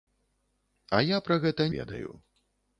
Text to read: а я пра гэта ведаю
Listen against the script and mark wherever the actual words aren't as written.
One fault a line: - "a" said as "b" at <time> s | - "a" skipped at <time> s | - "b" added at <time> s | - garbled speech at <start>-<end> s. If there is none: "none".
none